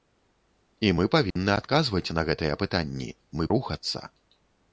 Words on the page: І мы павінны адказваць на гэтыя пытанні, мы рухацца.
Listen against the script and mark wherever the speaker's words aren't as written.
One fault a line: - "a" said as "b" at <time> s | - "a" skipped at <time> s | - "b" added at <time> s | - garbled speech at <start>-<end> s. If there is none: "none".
none